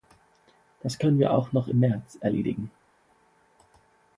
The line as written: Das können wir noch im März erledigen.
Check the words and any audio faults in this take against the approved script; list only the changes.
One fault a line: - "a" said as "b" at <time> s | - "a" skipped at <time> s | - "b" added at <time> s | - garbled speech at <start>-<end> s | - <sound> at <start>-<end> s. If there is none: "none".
- "auch" added at 1.3 s